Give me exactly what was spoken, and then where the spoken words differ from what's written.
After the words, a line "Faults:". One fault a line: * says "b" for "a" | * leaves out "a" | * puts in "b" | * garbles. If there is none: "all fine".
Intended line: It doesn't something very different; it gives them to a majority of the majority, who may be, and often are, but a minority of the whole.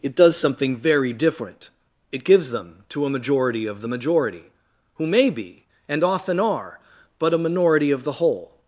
It does something very different; it gives them to a majority of the majority, who may be, and often are, but a minority of the whole.
Faults:
* says "does" for "doesn't"